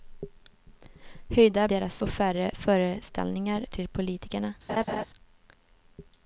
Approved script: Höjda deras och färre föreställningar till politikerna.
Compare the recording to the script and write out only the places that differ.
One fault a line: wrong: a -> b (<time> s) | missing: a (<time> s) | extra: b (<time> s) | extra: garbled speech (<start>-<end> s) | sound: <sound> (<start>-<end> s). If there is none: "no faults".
sound: laugh (4.7-5.0 s)